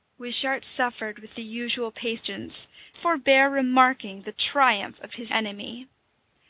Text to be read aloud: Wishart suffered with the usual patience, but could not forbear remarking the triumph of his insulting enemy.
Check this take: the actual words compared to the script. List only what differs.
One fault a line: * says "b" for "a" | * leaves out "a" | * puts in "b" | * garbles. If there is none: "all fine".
* leaves out "but could not"
* leaves out "insulting"